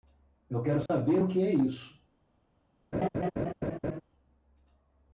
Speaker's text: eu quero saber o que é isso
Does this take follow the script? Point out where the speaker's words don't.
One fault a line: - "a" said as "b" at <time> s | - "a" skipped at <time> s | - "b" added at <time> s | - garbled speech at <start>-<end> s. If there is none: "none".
none